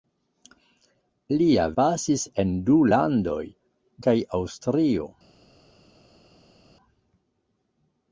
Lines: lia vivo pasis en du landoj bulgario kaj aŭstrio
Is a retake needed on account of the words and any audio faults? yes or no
yes